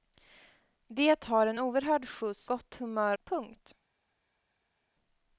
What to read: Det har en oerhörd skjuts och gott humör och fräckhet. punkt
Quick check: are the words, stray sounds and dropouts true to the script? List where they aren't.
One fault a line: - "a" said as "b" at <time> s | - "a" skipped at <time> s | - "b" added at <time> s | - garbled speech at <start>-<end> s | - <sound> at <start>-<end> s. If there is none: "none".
- "och" skipped at 2.5 s
- "och fräckhet" skipped at 3.2 s